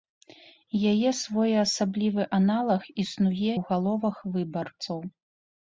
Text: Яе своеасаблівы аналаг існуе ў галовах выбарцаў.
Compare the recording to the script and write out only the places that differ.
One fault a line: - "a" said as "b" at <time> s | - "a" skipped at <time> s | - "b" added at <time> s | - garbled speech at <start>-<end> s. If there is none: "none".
none